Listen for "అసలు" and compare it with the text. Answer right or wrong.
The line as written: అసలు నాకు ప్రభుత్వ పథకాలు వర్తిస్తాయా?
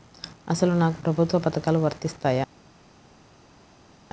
right